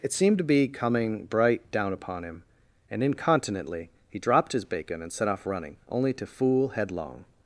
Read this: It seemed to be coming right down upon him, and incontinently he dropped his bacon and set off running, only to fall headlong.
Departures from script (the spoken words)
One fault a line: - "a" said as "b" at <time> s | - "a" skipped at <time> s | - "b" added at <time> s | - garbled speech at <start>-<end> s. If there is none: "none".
- "right" said as "bright" at 1.2 s
- "fall" said as "fool" at 6.2 s